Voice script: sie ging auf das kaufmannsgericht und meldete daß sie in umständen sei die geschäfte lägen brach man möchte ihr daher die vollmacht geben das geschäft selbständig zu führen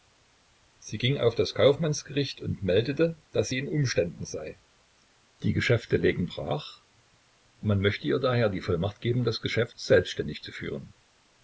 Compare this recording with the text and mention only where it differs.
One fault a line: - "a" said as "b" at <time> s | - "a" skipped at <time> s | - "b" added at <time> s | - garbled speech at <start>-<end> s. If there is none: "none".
none